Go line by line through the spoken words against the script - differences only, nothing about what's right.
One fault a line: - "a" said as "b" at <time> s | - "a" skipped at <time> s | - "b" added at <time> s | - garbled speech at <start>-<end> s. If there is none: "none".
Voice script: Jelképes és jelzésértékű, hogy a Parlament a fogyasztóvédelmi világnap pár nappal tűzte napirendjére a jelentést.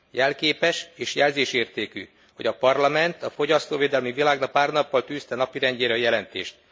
none